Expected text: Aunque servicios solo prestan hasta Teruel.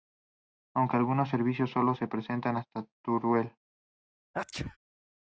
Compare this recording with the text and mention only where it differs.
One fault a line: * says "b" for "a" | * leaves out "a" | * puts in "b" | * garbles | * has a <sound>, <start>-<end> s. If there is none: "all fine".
* puts in "algunos"
* puts in "se"
* has a sneeze, 4.3-4.8 s